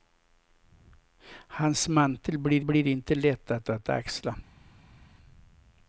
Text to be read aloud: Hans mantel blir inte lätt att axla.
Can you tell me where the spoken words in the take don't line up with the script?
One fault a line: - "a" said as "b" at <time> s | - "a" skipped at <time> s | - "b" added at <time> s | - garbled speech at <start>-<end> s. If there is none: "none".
- "blir" added at 2.6 s
- "att" added at 3.7 s